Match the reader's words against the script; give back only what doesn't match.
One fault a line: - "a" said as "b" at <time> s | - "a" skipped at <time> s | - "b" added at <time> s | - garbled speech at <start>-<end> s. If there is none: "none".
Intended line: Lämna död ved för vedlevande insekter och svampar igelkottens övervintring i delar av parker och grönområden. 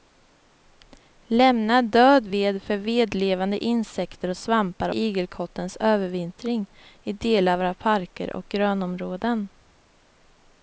none